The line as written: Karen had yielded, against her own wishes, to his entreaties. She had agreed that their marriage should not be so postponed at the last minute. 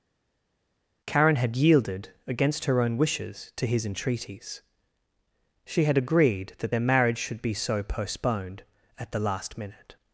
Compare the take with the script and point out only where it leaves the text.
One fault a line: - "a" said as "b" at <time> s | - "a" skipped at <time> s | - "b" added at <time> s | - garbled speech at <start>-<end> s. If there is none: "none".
- "not" skipped at 7.4 s